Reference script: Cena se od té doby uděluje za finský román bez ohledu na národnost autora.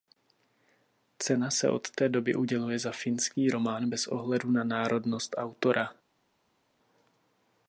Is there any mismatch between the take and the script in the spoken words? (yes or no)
no